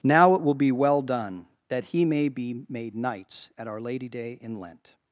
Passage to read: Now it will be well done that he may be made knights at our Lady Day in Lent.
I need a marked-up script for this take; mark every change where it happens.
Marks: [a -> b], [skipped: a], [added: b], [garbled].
Now it will be well done that he may be made knights at our Lady Day in Lent.